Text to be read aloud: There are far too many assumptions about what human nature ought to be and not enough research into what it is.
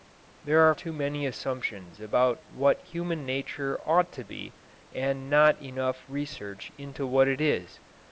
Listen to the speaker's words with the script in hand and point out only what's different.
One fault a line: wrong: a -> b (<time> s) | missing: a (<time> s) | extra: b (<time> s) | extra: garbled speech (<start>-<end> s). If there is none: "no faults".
missing: far (0.7 s)